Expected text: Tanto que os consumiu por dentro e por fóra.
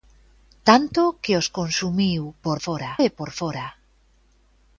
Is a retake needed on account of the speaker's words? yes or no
yes